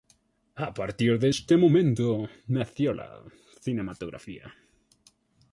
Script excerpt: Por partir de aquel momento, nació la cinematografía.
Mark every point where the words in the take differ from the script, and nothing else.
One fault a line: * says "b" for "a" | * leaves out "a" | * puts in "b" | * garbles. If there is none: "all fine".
* says "A" for "Por"
* says "este" for "aquel"